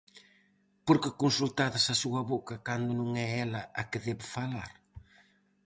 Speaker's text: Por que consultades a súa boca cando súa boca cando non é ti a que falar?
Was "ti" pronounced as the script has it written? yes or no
no